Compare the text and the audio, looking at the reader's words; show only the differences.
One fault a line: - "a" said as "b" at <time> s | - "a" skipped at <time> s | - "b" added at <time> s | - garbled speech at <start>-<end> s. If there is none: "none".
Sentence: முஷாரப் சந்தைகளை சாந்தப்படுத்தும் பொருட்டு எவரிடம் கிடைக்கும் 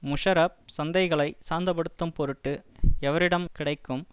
none